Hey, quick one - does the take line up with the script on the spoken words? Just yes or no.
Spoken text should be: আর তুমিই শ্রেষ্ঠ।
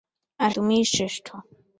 yes